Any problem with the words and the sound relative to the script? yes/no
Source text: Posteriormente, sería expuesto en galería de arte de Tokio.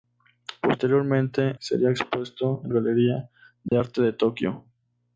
yes